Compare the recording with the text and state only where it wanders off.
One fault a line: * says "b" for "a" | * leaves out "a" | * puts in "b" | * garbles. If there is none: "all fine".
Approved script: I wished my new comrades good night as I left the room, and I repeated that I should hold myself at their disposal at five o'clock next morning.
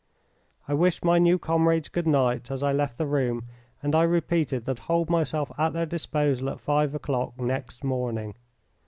* leaves out "I should"